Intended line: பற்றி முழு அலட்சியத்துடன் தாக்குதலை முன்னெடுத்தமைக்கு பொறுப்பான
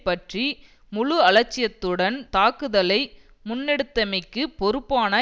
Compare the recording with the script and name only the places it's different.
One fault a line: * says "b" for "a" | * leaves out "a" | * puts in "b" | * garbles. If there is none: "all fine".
all fine